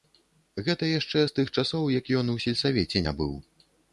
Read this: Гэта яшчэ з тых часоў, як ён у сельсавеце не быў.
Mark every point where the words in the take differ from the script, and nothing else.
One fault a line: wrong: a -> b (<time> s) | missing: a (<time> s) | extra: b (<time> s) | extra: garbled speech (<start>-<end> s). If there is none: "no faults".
no faults